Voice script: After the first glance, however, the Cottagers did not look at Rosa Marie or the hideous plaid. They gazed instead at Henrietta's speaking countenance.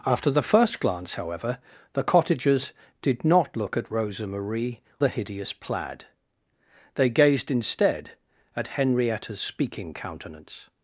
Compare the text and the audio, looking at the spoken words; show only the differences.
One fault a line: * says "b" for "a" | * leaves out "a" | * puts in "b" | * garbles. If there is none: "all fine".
* leaves out "or"